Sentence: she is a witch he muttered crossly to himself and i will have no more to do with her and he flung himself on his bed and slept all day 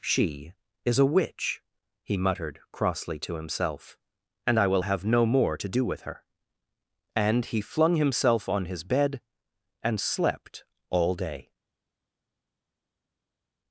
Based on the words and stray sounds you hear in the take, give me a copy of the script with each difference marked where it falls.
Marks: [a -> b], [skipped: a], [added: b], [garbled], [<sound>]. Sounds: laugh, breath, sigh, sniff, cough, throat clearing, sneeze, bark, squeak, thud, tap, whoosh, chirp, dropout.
she is a witch he muttered crossly to himself and i will have no more to do with her and he flung himself on his bed and slept all day